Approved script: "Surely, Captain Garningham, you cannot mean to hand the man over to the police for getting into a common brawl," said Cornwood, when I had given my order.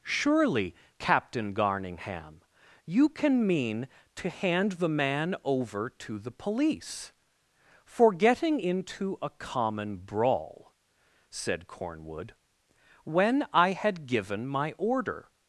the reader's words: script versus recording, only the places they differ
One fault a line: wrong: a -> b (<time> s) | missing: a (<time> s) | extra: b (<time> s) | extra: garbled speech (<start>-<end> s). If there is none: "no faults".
wrong: cannot -> can (3.1 s)